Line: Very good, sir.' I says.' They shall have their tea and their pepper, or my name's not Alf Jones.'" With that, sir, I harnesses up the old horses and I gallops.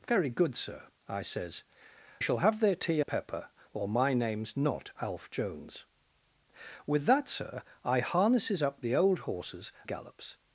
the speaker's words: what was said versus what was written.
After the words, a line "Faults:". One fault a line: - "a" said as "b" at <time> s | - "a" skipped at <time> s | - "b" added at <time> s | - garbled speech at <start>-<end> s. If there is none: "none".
Very good, sir.' I says.' Shall have their tea pepper, or my name's not Alf Jones.'" With that, sir, I harnesses up the old horses gallops.
Faults:
- "They" skipped at 1.6 s
- "and their" skipped at 3.0 s
- "and I" skipped at 9.7 s